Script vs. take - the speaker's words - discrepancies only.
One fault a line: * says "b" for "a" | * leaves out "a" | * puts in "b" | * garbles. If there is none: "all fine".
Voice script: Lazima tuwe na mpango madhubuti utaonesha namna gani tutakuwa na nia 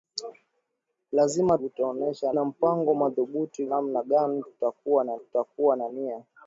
* says "utaonesha" for "tuwe"
* leaves out "utaonesha"
* puts in "tutakuwa na"